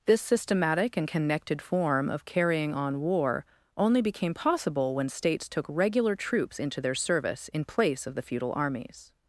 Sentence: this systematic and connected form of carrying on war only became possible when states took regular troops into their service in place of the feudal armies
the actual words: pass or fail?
pass